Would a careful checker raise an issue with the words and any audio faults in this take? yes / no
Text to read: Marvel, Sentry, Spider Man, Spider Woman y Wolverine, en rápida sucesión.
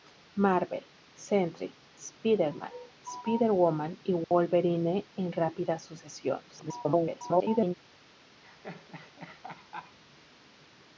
yes